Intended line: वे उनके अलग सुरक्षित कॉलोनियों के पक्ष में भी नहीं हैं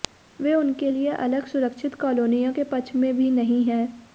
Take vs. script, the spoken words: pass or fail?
fail